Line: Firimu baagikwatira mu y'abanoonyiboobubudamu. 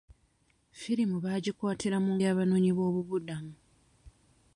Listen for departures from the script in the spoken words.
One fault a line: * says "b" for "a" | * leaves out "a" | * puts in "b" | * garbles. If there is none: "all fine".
all fine